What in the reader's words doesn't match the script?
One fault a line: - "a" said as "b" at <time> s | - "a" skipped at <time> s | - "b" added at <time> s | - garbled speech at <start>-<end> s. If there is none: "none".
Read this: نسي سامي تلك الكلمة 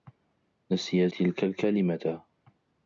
- "سامي" skipped at 1.1 s